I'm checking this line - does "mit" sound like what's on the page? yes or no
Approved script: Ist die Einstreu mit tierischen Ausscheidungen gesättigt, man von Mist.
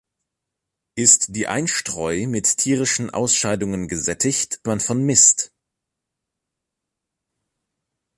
yes